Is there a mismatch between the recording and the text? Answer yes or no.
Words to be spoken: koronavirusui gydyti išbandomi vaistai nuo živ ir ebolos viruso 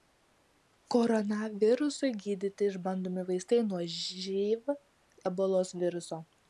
yes